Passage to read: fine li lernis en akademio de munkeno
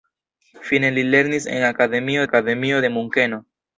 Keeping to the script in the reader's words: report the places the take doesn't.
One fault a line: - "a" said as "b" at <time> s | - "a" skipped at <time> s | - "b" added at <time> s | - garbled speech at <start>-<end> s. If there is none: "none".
- "akademio" added at 2.2 s